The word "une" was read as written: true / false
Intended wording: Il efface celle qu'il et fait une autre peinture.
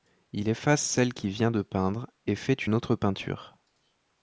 true